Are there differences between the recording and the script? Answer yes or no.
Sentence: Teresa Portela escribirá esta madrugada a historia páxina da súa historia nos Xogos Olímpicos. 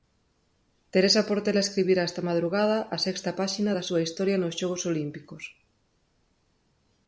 yes